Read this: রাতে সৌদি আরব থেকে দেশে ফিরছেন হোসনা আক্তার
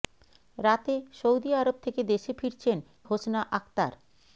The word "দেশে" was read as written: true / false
true